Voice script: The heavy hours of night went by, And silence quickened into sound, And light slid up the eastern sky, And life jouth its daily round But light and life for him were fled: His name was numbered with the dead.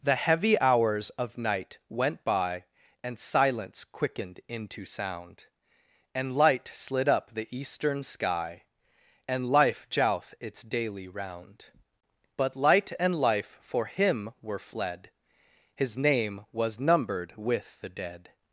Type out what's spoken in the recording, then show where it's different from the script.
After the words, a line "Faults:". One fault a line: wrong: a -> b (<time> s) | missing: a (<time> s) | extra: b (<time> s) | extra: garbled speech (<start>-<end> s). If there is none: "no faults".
The heavy hours of night went by, And silence quickened into sound, And light slid up the eastern sky, And life jouth its daily round But light and life for him were fled: His name was numbered with the dead.
Faults:
no faults